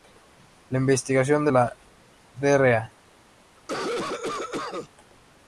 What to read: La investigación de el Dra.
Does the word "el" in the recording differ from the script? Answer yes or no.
yes